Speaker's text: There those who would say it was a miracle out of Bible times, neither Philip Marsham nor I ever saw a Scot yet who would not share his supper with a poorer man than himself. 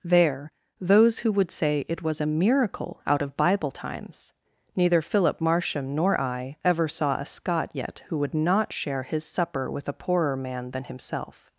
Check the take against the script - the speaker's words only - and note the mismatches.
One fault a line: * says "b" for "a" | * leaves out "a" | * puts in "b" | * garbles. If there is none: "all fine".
all fine